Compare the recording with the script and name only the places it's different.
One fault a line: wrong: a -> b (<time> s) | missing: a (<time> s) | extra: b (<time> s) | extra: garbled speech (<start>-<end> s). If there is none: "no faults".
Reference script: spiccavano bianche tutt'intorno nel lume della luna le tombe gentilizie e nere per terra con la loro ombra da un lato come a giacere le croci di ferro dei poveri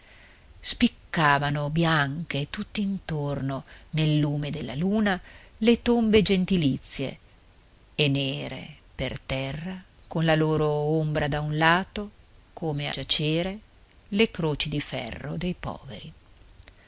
missing: a (12.9 s)